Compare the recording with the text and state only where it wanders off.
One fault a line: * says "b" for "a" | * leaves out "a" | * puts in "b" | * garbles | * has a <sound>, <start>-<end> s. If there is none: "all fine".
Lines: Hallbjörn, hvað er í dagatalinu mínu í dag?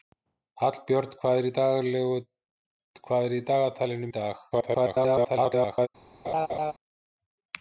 * leaves out "mínu"
* garbles
* has a laugh, 6.2-6.7 s